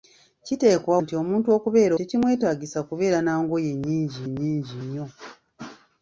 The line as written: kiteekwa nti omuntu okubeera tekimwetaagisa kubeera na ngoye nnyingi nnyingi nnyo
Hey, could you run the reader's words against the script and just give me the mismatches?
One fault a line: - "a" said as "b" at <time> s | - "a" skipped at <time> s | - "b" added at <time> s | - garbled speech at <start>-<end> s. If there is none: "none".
none